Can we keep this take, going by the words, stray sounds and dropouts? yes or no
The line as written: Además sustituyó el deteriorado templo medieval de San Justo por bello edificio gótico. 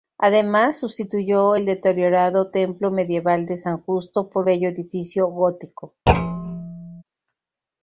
no